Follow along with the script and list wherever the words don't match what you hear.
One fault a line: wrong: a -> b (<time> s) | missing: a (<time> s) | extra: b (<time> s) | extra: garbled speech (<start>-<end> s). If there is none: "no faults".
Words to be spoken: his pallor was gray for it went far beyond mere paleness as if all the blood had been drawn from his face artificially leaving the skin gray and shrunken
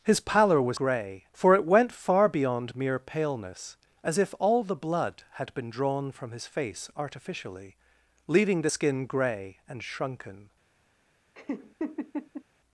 no faults